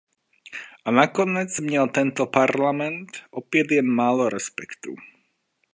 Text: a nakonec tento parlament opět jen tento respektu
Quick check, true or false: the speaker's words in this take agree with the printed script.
false